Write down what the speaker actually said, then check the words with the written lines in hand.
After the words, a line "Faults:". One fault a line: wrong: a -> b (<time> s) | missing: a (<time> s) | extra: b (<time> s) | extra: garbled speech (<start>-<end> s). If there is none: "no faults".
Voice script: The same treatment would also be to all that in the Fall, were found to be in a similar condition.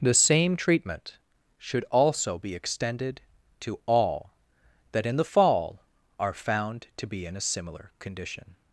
The same treatment should also be extended to all that in the Fall, are found to be in a similar condition.
Faults:
wrong: would -> should (1.6 s)
extra: extended (2.5 s)
wrong: were -> are (6.2 s)